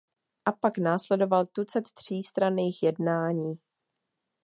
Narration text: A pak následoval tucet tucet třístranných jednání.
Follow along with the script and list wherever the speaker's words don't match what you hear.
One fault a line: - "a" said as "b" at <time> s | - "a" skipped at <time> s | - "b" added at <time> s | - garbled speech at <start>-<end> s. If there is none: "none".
- "tucet" skipped at 1.8 s